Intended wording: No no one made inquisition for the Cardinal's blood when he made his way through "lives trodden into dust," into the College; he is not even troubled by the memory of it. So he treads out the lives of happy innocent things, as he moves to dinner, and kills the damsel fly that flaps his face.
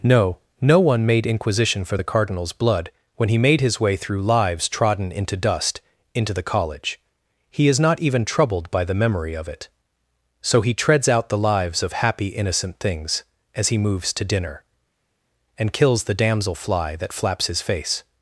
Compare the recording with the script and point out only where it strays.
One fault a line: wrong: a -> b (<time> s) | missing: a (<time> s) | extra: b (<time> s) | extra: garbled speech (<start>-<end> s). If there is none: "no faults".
no faults